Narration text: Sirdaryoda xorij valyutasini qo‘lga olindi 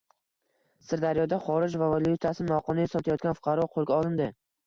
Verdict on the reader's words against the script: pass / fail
fail